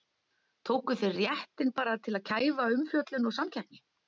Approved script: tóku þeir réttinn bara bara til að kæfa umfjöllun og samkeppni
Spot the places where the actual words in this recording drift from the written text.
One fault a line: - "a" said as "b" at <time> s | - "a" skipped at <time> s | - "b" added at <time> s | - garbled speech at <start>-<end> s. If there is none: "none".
- "bara" skipped at 2.0 s